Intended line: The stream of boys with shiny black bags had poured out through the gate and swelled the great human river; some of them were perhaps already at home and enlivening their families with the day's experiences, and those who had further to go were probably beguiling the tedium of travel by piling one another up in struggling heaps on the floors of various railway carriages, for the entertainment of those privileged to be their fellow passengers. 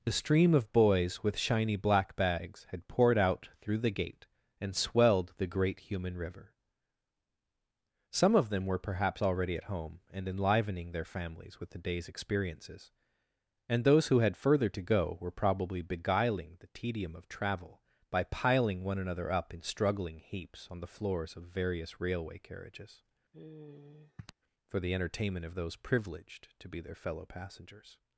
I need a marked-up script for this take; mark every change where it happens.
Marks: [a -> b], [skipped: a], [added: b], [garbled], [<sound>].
The stream of boys with shiny black bags had poured out through the gate and swelled the great human river; some of them were perhaps already at home and enlivening their families with the day's experiences, and those who had further to go were probably beguiling the tedium of travel by piling one another up in struggling heaps on the floors of various railway carriages, [sigh] for the entertainment of those privileged to be their fellow passengers.